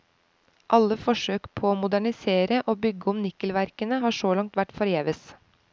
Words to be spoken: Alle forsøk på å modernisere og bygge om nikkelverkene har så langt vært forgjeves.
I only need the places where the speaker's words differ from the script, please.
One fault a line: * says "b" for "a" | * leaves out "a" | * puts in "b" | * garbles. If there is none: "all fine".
all fine